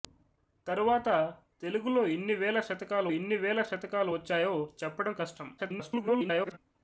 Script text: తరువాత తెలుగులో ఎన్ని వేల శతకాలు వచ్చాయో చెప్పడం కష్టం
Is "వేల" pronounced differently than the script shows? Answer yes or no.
no